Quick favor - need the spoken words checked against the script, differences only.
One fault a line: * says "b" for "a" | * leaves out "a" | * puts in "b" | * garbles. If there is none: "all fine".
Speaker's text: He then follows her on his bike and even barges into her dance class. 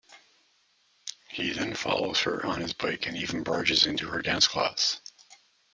all fine